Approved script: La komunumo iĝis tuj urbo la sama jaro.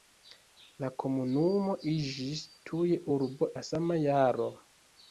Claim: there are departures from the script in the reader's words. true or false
false